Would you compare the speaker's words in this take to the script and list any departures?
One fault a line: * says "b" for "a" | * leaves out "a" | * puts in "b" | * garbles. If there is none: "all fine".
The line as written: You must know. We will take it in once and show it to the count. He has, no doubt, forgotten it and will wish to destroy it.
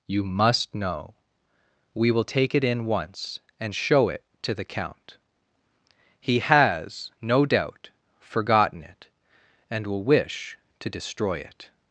all fine